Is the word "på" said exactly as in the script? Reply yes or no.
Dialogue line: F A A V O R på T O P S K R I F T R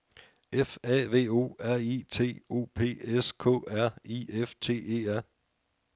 no